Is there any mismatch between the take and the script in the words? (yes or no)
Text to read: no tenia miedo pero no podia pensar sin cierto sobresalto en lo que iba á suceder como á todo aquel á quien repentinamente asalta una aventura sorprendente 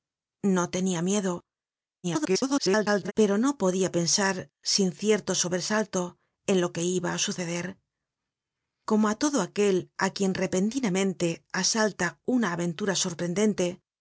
yes